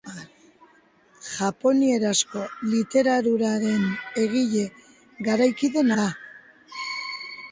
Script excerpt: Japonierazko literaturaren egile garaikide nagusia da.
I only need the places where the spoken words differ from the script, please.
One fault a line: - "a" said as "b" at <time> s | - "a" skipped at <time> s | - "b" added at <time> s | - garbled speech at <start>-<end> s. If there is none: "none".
- "nagusia" skipped at 5.9 s